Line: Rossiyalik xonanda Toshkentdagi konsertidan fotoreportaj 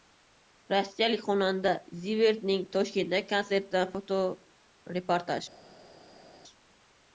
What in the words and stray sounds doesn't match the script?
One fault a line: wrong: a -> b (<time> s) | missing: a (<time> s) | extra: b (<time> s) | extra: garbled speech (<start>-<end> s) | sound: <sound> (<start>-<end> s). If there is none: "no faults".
extra: Zivert'ning (2.0 s)